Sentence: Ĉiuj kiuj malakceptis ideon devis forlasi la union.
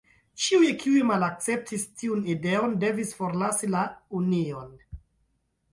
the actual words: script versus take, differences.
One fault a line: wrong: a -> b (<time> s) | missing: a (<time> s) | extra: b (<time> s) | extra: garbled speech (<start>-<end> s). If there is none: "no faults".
extra: tiun (2.0 s)